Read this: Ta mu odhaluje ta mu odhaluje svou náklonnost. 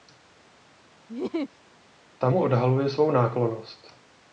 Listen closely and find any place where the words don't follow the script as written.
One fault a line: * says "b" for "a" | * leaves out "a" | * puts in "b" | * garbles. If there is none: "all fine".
* leaves out "ta mu odhaluje"